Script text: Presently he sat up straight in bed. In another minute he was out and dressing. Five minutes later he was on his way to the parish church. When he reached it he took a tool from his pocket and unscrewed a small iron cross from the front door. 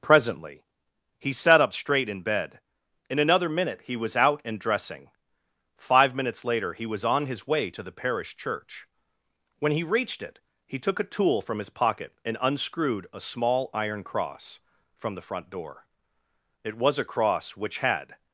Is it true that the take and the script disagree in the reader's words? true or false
true